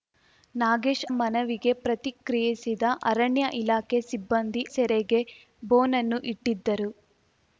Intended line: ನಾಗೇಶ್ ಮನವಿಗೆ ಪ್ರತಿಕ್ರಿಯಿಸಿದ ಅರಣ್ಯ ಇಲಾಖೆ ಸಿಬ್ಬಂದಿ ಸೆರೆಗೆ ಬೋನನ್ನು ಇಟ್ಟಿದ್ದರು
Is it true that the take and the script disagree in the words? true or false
false